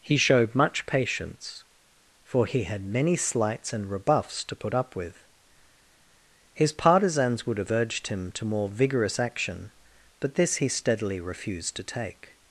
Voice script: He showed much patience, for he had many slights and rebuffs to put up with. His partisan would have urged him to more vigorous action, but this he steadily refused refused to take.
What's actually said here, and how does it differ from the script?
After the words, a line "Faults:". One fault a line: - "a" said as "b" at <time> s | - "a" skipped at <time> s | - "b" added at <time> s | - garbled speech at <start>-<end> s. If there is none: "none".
He showed much patience, for he had many slights and rebuffs to put up with. His partisans would have urged him to more vigorous action, but this he steadily refused to take.
Faults:
- "partisan" said as "partisans" at 6.7 s
- "refused" skipped at 11.8 s